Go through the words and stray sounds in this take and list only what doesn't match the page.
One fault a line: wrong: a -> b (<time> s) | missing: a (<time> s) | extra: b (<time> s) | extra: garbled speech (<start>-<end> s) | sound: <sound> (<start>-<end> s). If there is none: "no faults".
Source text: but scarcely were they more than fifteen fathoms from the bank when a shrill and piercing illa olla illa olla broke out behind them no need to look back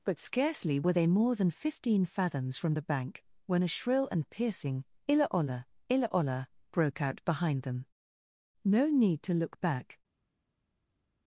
no faults